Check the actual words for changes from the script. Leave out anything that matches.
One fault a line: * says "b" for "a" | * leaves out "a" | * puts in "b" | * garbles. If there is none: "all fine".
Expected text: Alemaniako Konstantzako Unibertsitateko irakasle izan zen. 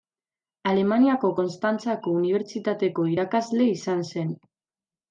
all fine